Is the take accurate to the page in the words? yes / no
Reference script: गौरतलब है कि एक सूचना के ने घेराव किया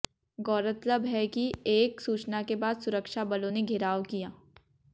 no